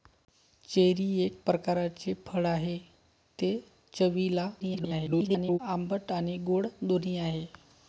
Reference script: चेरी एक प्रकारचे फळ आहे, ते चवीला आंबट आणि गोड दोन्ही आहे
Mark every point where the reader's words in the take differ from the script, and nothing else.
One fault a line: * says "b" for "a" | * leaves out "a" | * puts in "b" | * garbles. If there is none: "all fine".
* garbles